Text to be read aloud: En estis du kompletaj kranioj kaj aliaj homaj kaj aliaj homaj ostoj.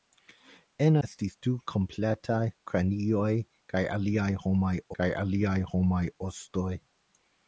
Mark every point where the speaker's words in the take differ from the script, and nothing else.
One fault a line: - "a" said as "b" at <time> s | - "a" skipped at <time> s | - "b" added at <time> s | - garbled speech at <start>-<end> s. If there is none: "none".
none